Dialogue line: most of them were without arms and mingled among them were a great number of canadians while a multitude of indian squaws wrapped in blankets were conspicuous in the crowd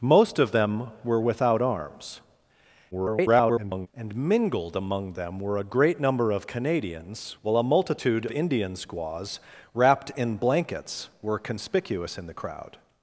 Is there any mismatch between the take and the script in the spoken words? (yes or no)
yes